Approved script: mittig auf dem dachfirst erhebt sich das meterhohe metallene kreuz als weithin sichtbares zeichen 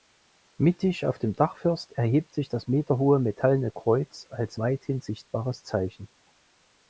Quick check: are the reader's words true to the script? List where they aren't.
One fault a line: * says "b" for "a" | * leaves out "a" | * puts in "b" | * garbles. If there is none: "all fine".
all fine